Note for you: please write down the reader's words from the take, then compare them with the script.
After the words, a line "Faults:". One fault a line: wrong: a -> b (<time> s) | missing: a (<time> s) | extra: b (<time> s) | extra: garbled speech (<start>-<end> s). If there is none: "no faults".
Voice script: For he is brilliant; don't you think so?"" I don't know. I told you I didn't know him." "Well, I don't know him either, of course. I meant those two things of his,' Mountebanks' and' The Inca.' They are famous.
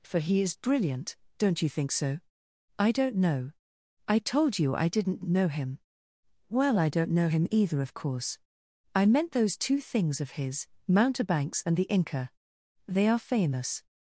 For he is brilliant; don't you think so?"" I don't know. I told you I didn't know him." "Well, I don't know him either, of course. I meant those two things of his,' Mountebanks' and' The Inca.' They are famous.
Faults:
no faults